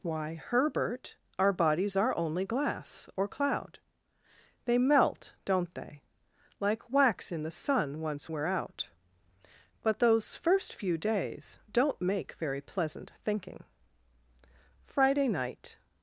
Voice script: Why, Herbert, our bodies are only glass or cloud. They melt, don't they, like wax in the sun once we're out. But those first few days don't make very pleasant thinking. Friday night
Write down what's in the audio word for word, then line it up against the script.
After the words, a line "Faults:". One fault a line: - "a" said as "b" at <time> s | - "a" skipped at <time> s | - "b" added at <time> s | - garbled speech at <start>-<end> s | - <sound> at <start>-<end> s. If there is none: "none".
Why, Herbert, our bodies are only glass or cloud. They melt, don't they, like wax in the sun once we're out. But those first few days don't make very pleasant thinking. Friday night
Faults:
none